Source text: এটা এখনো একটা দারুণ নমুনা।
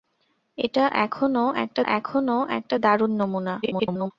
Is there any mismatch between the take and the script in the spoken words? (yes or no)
yes